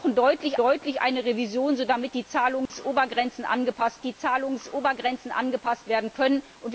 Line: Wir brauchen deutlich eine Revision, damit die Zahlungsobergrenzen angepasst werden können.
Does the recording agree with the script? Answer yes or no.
no